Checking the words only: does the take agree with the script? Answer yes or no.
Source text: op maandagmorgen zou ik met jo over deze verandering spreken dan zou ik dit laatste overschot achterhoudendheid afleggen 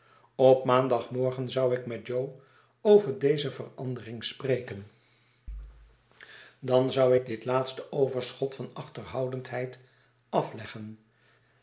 no